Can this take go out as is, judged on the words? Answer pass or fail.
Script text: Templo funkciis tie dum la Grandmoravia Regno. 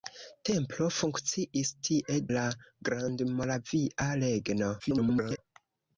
fail